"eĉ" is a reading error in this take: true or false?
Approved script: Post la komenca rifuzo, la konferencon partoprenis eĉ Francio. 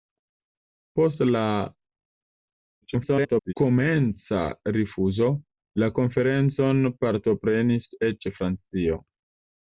false